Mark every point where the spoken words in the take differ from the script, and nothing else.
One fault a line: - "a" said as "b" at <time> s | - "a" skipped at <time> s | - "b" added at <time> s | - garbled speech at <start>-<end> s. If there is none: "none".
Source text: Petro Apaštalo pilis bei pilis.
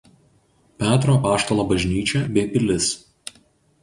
- "pilis" said as "bažnyčia" at 1.7 s